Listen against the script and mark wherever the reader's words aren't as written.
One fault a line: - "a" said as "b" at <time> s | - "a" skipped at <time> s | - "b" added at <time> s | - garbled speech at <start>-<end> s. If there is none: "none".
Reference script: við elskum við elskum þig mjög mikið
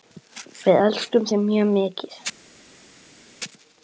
- "við elskum" skipped at 1.3 s